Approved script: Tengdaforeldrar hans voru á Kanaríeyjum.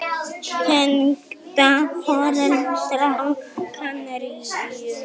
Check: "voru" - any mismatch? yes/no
yes